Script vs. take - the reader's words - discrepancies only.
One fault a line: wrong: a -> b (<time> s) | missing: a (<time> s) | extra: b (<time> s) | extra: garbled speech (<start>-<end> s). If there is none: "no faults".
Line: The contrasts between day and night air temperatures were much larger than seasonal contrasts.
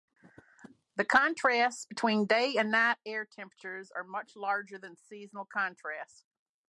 wrong: were -> are (3.9 s)